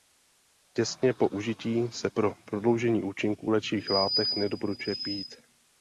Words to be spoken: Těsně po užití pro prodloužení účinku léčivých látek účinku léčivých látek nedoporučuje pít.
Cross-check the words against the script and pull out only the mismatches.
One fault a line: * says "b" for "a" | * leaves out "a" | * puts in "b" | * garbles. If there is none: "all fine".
* puts in "se"
* leaves out "účinku léčivých látek"